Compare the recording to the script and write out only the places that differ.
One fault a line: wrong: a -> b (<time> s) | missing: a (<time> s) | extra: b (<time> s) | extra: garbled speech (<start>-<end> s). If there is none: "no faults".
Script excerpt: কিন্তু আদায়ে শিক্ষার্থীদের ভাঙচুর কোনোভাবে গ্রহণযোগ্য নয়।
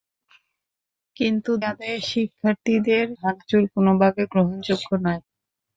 no faults